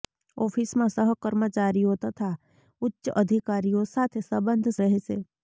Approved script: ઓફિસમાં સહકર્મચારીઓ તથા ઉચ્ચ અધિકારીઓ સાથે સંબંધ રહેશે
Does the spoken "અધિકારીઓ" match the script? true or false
true